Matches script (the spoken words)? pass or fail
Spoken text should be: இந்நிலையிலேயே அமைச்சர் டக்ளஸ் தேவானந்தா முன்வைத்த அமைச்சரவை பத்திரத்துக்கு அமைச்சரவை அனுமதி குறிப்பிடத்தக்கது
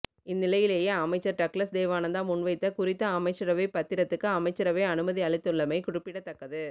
fail